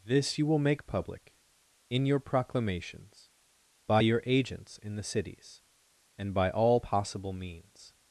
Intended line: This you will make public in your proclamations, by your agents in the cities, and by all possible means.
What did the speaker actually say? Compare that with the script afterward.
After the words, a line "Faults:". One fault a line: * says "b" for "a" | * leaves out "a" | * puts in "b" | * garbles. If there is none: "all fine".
This you will make public in your proclamations, by your agents in the cities, and by all possible means.
Faults:
all fine